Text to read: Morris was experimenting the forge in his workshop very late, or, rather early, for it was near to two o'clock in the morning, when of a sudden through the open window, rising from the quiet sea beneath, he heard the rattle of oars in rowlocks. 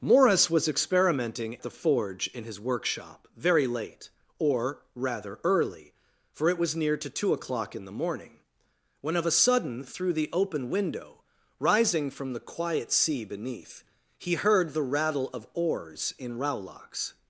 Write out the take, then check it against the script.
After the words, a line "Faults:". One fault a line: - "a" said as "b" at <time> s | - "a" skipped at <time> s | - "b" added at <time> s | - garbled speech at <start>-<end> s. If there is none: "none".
Morris was experimenting the forge in his workshop very late, or, rather early, for it was near to two o'clock in the morning, when of a sudden through the open window, rising from the quiet sea beneath, he heard the rattle of oars in rowlocks.
Faults:
none